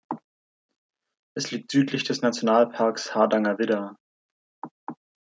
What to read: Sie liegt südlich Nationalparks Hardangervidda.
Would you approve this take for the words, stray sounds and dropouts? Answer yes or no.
no